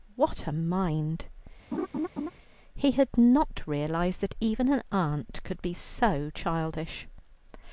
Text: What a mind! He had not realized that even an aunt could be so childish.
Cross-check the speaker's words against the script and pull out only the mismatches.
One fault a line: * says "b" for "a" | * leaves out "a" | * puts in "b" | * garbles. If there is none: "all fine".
all fine